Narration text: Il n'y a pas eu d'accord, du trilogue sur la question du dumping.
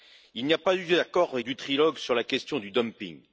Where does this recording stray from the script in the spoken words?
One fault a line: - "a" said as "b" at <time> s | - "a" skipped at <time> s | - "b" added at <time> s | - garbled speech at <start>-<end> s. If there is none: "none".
none